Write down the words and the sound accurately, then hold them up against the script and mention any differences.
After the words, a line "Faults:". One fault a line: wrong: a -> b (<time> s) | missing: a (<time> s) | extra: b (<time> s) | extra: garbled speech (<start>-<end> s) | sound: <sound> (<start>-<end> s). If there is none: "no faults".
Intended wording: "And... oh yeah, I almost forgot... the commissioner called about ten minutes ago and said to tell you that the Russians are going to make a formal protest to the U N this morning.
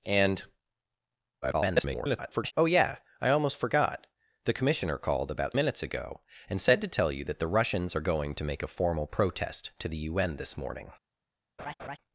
"And... [garbled] oh yeah, I almost forgot... the commissioner called about minutes ago and said to tell you that the Russians are going to make a formal protest to the U N this morning.
Faults:
extra: garbled speech (1.4-2.5 s)
missing: ten (5.6 s)
sound: laugh (11.6-12.0 s)